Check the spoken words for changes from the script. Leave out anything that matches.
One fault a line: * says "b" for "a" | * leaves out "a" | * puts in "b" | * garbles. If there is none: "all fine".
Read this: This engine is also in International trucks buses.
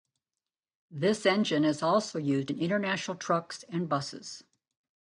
* puts in "used"
* puts in "and"